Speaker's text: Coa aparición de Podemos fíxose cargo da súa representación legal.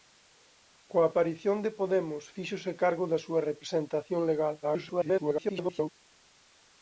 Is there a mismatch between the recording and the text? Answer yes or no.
yes